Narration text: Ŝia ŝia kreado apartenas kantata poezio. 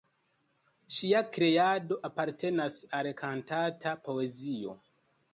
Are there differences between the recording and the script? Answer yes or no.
yes